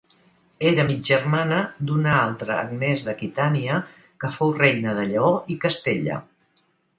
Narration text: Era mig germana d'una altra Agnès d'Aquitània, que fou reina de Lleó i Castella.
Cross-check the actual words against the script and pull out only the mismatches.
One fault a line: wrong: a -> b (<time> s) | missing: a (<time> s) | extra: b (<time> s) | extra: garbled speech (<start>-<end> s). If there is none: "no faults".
no faults